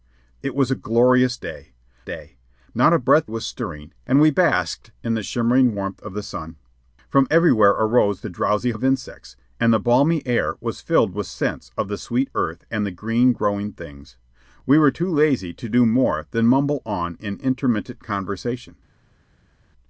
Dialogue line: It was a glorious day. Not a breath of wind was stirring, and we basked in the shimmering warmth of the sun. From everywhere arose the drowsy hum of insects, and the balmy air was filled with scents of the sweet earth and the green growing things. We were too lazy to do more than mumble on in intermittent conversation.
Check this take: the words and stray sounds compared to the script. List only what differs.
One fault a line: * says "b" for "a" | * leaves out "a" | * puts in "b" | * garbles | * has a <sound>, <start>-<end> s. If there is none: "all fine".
* puts in "day"
* leaves out "of wind"
* leaves out "hum"